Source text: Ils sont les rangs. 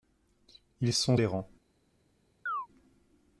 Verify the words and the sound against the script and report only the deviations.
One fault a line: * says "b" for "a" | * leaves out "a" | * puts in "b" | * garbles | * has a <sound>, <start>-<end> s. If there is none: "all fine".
* has a chirp, 2.5-2.7 s